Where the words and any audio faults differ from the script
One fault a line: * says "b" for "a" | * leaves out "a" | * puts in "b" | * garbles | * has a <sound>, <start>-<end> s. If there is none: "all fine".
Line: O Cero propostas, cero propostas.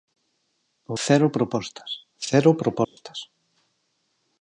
* has a dropout, 2.8-3.0 s